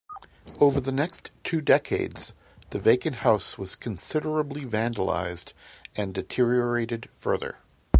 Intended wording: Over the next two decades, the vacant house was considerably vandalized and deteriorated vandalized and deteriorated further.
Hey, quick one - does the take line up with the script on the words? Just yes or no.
no